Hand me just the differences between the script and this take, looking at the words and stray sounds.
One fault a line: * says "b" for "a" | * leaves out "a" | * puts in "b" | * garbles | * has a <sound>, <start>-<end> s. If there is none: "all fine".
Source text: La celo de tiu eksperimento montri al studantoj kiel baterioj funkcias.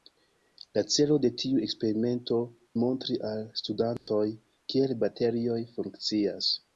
* has a dropout, 4.0-4.1 s